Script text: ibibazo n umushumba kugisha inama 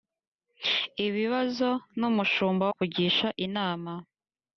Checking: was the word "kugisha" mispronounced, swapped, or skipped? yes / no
no